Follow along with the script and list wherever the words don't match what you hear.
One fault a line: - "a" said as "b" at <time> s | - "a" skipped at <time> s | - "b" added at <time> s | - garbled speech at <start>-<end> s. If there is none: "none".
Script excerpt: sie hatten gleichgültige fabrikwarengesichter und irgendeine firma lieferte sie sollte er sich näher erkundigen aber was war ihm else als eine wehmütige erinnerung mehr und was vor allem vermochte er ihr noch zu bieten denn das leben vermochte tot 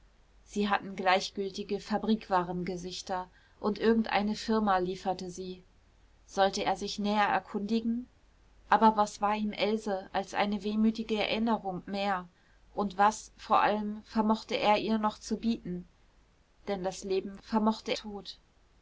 none